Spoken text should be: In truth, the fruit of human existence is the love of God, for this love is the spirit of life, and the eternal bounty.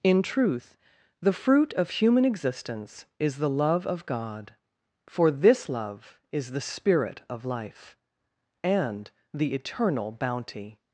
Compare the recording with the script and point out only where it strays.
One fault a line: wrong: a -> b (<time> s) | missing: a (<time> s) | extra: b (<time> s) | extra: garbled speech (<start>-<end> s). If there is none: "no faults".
no faults